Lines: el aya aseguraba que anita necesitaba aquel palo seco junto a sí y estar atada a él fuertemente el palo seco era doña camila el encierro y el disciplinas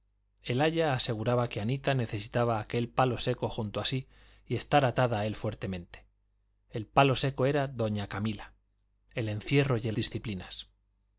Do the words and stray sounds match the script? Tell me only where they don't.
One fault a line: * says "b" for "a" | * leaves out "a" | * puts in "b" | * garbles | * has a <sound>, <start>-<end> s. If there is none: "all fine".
all fine